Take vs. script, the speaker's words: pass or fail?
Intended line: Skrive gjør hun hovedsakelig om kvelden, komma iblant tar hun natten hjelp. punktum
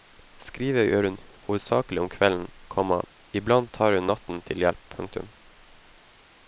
fail